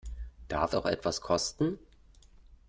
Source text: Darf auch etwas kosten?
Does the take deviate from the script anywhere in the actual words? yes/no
no